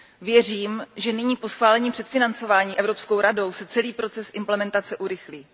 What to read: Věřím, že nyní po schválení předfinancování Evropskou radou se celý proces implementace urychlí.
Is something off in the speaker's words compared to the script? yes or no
no